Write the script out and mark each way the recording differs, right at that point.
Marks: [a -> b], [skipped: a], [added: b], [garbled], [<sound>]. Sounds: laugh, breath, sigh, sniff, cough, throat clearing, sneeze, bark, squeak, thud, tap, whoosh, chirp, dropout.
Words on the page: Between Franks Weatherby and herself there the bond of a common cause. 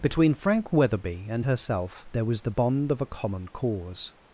Between [Franks -> Frank] Weatherby and herself there [added: was] the bond of a common cause.